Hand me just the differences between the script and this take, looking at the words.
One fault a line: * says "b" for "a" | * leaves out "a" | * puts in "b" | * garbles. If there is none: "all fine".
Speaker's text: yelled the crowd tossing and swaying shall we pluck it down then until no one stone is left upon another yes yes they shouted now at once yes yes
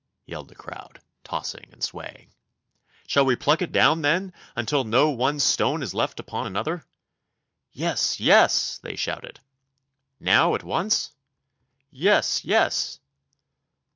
all fine